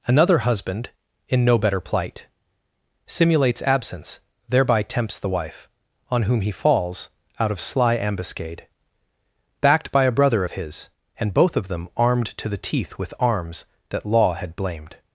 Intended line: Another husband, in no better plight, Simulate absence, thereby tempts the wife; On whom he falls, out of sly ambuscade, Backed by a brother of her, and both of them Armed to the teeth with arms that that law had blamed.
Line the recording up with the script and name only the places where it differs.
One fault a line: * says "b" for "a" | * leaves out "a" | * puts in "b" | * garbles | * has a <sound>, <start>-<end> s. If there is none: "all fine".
* says "Simulates" for "Simulate"
* says "his" for "her"
* leaves out "that"